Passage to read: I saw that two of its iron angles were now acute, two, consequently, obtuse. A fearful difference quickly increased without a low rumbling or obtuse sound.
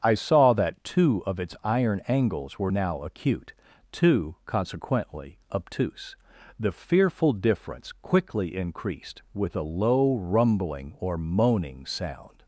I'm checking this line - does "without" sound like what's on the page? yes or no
no